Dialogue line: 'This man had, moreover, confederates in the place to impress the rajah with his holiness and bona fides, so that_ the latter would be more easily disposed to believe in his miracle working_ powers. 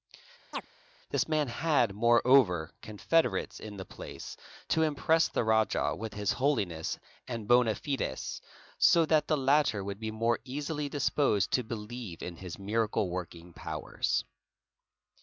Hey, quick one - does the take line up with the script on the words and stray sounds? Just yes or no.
no